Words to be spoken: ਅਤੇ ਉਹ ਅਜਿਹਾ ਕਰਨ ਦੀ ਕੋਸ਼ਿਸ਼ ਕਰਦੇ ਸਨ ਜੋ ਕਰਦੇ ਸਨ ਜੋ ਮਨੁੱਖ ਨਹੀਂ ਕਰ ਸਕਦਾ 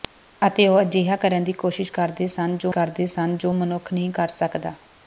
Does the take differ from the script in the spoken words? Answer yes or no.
no